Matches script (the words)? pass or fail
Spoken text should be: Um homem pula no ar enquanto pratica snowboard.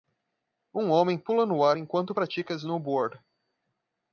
pass